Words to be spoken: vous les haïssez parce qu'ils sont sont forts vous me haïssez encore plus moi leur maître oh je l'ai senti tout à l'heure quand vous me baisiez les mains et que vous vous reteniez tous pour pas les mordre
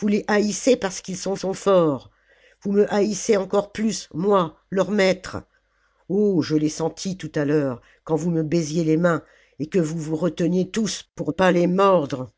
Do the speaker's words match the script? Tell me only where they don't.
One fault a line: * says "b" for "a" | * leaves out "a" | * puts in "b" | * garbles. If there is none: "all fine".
all fine